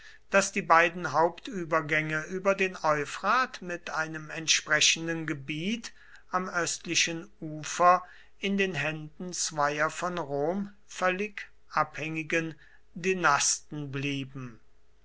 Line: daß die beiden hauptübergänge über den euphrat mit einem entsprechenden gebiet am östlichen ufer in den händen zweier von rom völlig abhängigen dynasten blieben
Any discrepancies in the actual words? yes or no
no